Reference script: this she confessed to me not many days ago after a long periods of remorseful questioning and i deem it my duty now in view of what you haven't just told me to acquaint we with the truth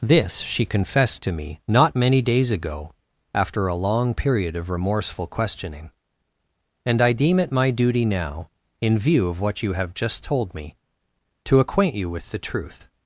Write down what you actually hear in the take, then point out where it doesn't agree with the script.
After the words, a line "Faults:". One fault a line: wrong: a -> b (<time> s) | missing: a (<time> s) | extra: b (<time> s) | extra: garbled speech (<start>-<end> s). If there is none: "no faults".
this she confessed to me not many days ago after a long period of remorseful questioning and i deem it my duty now in view of what you have just told me to acquaint you with the truth
Faults:
wrong: periods -> period (4.2 s)
wrong: haven't -> have (9.7 s)
wrong: we -> you (11.9 s)